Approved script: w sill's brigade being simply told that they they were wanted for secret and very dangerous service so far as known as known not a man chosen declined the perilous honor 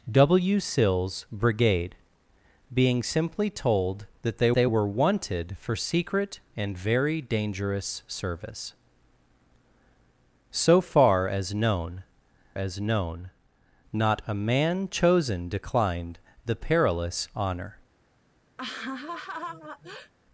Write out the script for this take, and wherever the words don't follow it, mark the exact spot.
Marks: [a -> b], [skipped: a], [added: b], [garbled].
w sill's brigade being simply told that they they were wanted for secret and very dangerous service so far as known as known not a man chosen declined the perilous honor